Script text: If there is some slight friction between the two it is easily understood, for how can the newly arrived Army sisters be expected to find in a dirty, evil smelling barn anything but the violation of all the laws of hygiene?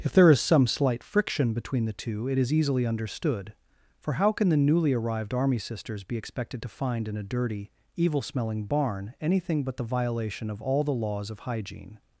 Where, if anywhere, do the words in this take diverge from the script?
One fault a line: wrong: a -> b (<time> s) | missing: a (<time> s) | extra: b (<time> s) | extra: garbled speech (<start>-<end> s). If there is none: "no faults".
no faults